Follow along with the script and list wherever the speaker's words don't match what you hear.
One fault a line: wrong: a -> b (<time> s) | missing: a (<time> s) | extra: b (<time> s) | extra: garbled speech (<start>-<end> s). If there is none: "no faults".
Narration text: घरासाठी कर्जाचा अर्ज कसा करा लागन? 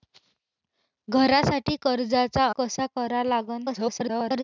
missing: अर्ज (2.5 s)
extra: garbled speech (3.6-4.4 s)